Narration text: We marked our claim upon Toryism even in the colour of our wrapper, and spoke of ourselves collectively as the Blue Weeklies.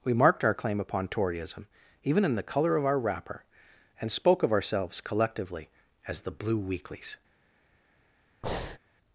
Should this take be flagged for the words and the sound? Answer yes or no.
yes